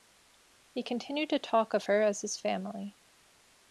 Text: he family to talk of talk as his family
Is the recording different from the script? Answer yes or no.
yes